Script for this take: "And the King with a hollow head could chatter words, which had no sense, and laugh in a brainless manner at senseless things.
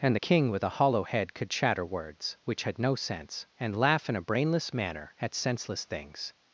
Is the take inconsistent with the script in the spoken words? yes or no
no